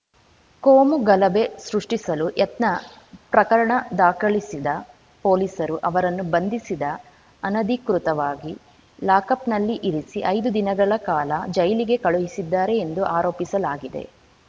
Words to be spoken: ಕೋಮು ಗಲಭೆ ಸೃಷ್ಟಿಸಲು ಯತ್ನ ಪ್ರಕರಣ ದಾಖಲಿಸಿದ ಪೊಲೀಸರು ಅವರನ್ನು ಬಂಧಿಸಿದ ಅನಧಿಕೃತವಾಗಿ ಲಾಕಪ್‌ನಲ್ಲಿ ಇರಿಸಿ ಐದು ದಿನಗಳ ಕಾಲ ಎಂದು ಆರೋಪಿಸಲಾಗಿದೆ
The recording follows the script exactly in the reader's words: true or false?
false